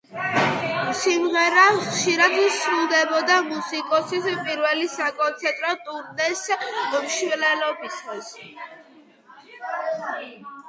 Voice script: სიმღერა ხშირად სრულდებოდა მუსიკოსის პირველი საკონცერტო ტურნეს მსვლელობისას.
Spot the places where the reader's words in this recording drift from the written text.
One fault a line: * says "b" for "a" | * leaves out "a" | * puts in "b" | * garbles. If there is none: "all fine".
all fine